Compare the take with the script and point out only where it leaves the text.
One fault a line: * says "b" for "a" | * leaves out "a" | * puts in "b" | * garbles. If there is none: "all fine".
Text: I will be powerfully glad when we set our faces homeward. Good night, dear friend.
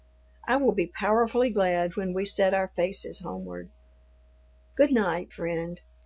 * leaves out "dear"